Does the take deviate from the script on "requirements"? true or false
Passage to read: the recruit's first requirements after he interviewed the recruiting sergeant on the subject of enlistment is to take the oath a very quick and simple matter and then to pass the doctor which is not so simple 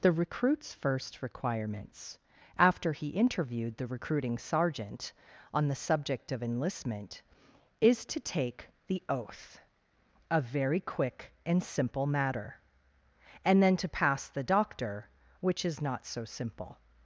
false